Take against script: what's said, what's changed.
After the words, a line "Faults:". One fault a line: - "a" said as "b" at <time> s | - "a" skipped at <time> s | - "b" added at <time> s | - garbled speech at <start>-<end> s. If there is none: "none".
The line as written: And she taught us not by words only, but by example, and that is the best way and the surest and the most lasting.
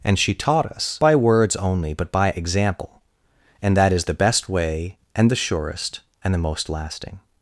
And she taught us by words only, but by example, and that is the best way and the surest and the most lasting.
Faults:
- "not" skipped at 1.0 s